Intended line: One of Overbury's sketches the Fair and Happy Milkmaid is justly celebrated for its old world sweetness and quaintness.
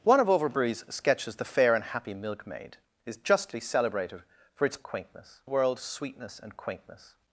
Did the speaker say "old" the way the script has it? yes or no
no